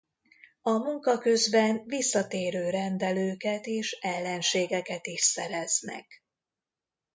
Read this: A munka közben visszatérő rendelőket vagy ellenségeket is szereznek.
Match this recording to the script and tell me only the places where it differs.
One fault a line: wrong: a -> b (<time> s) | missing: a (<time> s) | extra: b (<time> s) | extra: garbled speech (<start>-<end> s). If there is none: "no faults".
wrong: vagy -> és (3.6 s)